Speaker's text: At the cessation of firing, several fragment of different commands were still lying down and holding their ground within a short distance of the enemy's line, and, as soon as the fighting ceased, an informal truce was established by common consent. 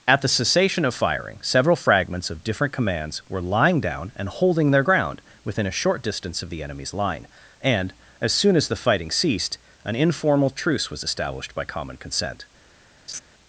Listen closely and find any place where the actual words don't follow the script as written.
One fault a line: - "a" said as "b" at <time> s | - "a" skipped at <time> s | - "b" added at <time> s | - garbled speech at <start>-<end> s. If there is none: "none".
- "fragment" said as "fragments" at 1.8 s
- "still" skipped at 3.4 s